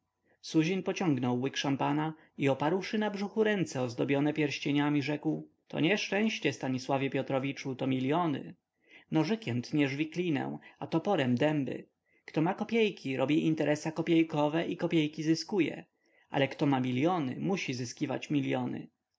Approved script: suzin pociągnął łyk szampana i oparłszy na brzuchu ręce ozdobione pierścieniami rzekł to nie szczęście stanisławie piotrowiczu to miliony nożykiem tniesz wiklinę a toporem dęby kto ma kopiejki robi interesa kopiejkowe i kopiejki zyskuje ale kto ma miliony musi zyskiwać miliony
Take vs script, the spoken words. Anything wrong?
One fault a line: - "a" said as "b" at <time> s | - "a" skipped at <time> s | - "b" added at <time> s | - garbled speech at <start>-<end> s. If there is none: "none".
none